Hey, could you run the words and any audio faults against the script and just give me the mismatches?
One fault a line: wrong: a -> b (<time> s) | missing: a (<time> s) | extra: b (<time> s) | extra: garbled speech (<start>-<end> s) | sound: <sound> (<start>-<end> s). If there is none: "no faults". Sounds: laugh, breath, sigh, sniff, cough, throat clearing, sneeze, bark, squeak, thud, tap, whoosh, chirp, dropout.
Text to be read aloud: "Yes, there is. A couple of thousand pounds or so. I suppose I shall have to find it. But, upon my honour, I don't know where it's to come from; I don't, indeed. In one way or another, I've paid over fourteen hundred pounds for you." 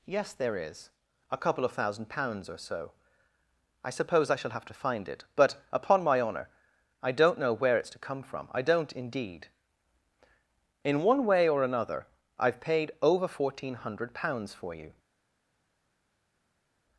no faults